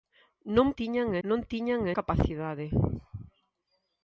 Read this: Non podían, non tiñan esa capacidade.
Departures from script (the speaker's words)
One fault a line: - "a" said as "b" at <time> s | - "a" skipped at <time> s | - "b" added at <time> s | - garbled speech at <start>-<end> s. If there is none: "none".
- "podían" said as "tiñan" at 0.8 s
- "esa" skipped at 1.8 s